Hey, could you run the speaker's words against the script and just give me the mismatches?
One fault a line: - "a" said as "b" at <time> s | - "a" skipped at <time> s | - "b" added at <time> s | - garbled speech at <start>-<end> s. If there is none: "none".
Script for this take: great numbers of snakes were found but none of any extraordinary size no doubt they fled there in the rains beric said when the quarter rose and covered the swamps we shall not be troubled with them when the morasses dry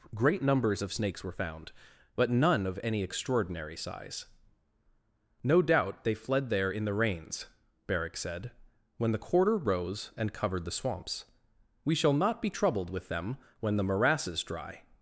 none